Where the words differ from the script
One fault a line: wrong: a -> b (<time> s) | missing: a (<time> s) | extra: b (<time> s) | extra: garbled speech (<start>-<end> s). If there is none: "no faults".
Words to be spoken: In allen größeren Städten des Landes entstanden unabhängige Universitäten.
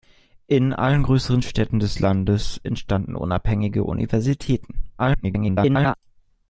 extra: garbled speech (5.0-5.9 s)